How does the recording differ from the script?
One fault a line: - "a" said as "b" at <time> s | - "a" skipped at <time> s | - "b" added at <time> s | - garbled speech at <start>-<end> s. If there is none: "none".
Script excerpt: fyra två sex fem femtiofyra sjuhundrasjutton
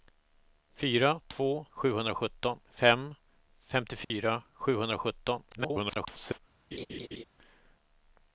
- "sex" said as "sjuhundrasjutton" at 1.7 s
- garbled speech at 5.5-6.4 s